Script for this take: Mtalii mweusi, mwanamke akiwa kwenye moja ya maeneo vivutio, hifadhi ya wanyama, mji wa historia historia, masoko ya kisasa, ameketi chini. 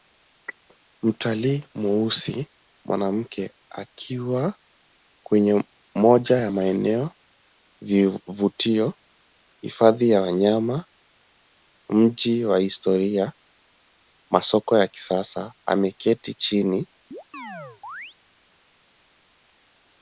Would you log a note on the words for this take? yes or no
yes